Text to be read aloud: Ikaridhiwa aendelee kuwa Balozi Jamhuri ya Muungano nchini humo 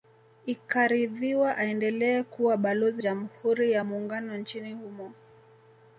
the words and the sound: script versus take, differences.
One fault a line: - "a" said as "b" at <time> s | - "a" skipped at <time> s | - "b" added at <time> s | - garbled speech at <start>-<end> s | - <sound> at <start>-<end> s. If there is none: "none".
none